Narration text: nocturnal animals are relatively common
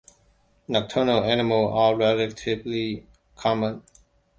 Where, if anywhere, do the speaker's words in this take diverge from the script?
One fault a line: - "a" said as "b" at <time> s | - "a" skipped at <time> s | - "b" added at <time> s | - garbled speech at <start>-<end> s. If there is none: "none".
none